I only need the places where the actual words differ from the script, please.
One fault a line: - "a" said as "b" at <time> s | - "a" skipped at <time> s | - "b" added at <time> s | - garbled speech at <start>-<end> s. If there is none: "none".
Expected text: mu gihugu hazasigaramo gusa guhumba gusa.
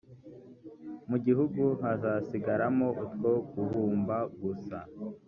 - "gusa" said as "utwo" at 3.0 s